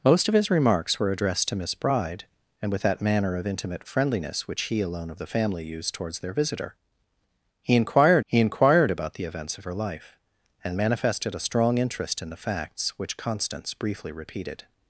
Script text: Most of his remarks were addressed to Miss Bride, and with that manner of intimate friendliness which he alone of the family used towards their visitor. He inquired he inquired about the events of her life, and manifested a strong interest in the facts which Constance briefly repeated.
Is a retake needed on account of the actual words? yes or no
no